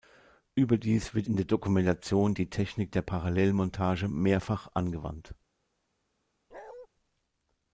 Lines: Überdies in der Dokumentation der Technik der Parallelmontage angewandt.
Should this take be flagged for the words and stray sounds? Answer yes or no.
yes